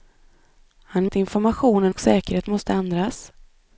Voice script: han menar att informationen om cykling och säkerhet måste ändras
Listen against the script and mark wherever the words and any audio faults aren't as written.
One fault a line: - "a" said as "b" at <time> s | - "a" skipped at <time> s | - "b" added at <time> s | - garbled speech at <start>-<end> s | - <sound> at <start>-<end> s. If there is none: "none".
- "menar" skipped at 1.1 s
- "om cykling" skipped at 1.9 s